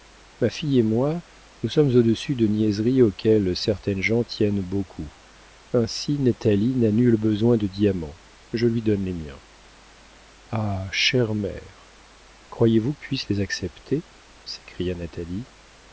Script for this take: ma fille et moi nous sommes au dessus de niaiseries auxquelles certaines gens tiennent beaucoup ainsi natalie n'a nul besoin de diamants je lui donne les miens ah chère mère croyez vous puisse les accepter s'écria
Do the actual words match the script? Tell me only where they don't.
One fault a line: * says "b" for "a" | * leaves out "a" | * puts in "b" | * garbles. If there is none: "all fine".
all fine